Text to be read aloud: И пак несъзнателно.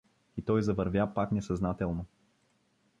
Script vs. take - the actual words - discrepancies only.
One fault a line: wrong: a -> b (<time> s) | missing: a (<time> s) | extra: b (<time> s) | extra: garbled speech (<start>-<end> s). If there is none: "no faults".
extra: той завървя (0.4 s)